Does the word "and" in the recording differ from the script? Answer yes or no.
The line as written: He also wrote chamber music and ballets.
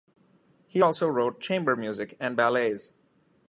no